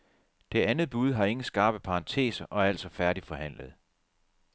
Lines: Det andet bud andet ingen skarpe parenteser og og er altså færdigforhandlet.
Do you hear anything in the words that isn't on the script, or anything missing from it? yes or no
yes